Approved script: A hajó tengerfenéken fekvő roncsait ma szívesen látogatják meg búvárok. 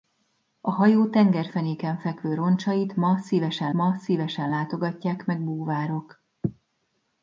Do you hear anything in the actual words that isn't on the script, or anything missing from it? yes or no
yes